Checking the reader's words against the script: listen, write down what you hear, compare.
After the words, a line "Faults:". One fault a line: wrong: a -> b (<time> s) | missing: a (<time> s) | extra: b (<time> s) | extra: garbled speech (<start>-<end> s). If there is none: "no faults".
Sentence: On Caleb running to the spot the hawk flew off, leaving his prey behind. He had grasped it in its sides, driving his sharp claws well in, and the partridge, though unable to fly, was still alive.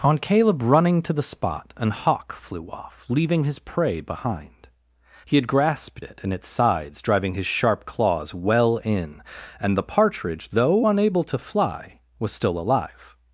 On Caleb running to the spot an hawk flew off, leaving his prey behind. He had grasped it in its sides, driving his sharp claws well in, and the partridge, though unable to fly, was still alive.
Faults:
wrong: the -> an (1.8 s)